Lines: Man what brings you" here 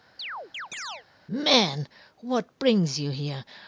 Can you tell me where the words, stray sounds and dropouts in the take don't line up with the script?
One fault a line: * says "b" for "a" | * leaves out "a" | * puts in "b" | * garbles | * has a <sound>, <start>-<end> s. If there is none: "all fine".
* has a chirp, 0.2-1.1 s